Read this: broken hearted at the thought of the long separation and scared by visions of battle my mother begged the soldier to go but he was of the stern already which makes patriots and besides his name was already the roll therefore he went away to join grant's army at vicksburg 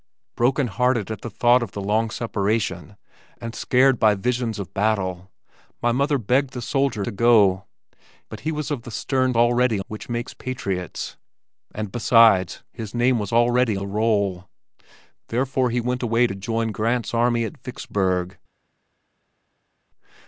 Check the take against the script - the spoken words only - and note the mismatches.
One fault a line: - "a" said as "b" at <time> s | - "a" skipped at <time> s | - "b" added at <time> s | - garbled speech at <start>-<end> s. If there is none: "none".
none